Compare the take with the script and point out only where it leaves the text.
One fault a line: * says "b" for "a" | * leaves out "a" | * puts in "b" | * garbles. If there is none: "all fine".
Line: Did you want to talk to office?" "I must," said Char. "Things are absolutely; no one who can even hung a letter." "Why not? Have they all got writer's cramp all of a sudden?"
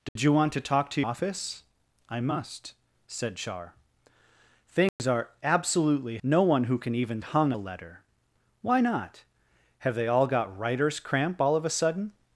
all fine